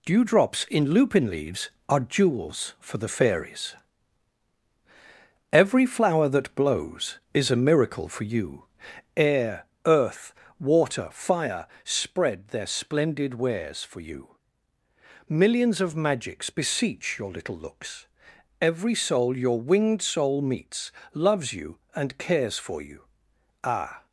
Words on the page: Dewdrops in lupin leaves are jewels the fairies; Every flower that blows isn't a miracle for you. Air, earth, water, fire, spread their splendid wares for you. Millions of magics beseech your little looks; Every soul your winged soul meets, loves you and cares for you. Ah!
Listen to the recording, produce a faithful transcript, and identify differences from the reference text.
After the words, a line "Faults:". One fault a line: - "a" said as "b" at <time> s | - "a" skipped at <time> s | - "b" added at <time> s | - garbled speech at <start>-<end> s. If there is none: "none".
Dewdrops in lupin leaves are jewels for the fairies; Every flower that blows is a miracle for you. Air, earth, water, fire, spread their splendid wares for you. Millions of magics beseech your little looks; Every soul your winged soul meets, loves you and cares for you. Ah!
Faults:
- "for" added at 2.8 s
- "isn't" said as "is" at 7.3 s